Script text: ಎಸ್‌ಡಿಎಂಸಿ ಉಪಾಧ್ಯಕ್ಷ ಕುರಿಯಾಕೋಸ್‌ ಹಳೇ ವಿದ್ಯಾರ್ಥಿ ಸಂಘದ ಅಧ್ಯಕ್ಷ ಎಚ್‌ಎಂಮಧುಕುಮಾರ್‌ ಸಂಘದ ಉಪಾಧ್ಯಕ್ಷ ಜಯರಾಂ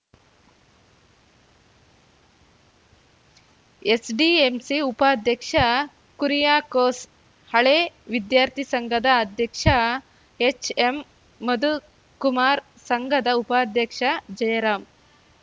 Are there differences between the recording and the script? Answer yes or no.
no